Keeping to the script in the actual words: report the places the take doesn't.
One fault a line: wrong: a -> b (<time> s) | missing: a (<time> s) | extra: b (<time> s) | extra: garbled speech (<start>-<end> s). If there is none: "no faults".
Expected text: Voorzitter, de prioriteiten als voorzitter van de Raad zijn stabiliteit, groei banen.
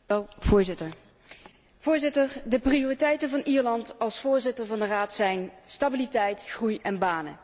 extra: van Ierland (3.3 s)
extra: en (6.8 s)